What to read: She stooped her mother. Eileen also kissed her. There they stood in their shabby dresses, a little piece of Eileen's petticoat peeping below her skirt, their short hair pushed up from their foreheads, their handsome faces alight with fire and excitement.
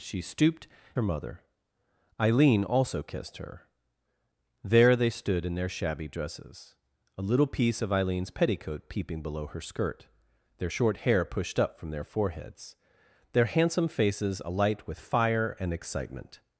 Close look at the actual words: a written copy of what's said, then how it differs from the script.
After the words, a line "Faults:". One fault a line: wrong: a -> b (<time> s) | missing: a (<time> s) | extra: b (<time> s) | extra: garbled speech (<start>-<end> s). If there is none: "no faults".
She stooped her mother. Eileen also kissed her. There they stood in their shabby dresses, a little piece of Eileen's petticoat peeping below her skirt, their short hair pushed up from their foreheads, their handsome faces alight with fire and excitement.
Faults:
no faults